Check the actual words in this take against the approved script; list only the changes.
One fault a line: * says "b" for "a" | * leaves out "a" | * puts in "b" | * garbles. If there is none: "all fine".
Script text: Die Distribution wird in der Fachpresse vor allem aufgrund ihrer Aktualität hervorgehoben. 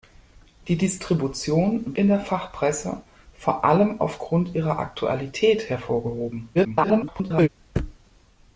* leaves out "wird"
* garbles